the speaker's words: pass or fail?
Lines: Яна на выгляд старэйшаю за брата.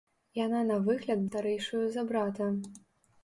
pass